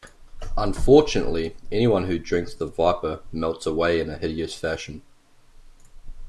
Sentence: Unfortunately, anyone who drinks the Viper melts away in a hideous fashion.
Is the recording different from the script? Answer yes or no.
no